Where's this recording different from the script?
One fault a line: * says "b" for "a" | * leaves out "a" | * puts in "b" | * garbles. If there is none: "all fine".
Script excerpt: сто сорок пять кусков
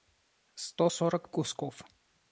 * leaves out "пять"